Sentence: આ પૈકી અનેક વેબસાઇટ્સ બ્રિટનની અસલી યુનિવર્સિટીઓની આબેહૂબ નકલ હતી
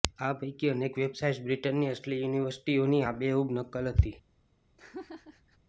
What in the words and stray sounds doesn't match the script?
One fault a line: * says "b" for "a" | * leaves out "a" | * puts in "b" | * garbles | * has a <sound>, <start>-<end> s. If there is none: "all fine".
* has a laugh, 4.8-5.6 s